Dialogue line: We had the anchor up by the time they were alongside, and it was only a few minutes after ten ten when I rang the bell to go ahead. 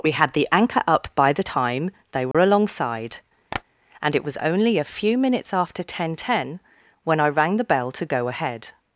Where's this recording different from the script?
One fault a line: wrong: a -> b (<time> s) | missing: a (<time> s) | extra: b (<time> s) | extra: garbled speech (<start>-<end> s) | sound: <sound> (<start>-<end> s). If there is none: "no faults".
sound: dropout (2.3-2.3 s)
sound: tap (3.5-3.6 s)